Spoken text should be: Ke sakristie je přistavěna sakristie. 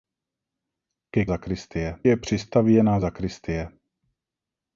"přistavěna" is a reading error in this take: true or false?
false